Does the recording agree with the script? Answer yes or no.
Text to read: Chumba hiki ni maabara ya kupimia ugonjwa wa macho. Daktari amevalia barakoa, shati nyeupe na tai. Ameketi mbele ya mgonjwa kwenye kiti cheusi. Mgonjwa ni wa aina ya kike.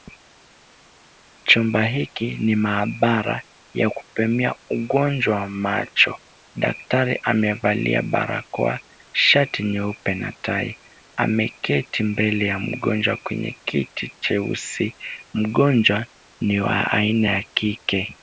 yes